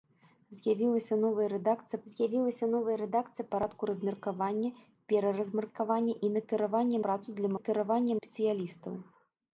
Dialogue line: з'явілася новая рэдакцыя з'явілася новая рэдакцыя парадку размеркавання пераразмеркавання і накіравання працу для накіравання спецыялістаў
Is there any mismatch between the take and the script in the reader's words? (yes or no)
no